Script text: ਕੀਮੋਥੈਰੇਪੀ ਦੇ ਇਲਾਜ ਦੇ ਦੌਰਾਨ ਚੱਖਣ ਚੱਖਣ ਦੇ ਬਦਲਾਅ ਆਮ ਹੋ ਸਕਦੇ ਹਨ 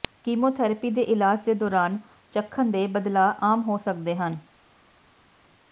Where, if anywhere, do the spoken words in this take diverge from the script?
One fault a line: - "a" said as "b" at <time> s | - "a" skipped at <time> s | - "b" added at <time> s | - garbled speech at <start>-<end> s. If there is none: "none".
- "ਚੱਖਣ" skipped at 2.7 s